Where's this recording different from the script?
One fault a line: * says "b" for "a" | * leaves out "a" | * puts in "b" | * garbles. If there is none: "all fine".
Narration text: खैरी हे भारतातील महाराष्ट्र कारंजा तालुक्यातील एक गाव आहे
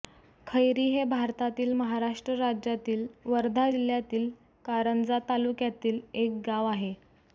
* puts in "राज्यातील वर्धा जिल्ह्यातील"